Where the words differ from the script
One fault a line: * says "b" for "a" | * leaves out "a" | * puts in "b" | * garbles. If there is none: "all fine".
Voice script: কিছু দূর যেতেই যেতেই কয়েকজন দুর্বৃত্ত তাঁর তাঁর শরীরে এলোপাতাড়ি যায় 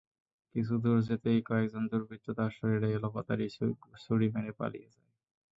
* leaves out "যেতেই"
* leaves out "তাঁর"
* puts in "ছুরি মেরে পালিয়ে"